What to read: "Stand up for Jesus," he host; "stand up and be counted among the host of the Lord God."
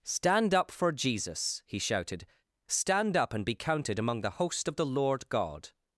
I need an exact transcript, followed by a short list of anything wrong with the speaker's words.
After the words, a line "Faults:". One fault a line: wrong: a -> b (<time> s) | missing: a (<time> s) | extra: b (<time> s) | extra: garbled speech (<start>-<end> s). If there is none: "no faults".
"Stand up for Jesus," he shouted; "stand up and be counted among the host of the Lord God."
Faults:
wrong: host -> shouted (1.8 s)